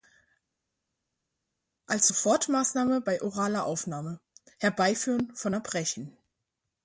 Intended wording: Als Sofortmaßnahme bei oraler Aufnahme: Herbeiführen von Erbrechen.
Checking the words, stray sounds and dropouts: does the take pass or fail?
pass